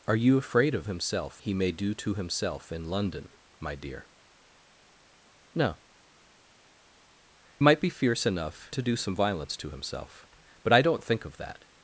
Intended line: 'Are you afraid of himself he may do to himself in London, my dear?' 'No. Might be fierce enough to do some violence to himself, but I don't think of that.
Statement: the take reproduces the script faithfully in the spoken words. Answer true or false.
true